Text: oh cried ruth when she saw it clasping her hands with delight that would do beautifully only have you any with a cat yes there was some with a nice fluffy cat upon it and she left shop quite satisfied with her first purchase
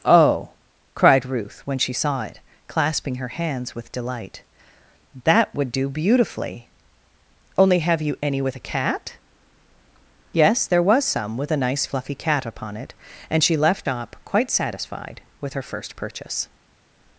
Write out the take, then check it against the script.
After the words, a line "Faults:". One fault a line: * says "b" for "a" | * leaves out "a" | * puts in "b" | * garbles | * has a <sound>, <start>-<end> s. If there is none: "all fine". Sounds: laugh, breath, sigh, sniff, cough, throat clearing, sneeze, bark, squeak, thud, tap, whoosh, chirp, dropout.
oh cried ruth when she saw it clasping her hands with delight that would do beautifully only have you any with a cat yes there was some with a nice fluffy cat upon it and she left shop quite satisfied with her first purchase
Faults:
all fine